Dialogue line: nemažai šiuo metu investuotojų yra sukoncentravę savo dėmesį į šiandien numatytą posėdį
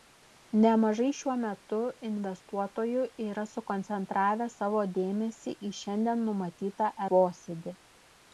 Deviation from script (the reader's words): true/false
false